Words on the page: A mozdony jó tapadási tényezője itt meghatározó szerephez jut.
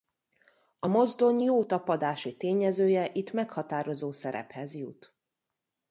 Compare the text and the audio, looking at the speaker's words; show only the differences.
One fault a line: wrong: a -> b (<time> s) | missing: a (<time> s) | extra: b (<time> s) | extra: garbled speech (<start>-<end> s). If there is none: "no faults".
no faults